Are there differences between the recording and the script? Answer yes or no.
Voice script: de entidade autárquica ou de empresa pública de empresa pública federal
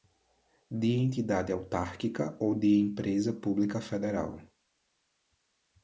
yes